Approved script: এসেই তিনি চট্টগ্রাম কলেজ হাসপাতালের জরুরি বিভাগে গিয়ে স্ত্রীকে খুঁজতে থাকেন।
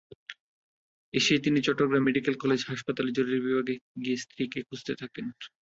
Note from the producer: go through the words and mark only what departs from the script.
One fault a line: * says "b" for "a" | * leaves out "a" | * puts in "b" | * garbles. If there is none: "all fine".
* puts in "মেডিকেল"